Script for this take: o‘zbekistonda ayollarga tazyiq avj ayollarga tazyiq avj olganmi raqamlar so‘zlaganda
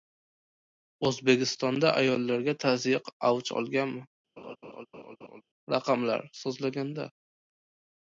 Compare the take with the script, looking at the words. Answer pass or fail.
fail